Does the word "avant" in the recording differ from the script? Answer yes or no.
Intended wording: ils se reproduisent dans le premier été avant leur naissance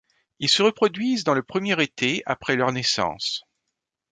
yes